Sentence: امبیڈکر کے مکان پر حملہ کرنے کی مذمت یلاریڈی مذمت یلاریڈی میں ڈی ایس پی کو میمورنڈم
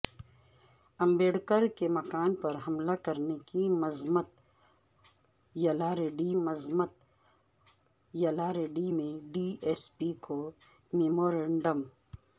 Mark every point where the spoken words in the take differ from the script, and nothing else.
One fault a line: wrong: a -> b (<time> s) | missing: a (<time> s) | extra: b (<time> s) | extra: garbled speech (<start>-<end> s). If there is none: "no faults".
no faults